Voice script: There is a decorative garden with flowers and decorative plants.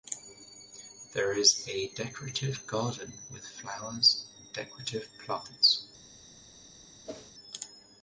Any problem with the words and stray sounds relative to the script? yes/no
yes